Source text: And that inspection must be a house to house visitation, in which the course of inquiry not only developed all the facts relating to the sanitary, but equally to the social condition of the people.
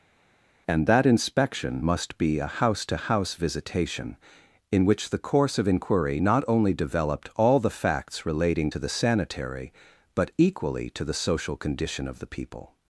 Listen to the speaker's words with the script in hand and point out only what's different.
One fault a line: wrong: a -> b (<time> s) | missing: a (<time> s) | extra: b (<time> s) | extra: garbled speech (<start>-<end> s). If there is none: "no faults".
no faults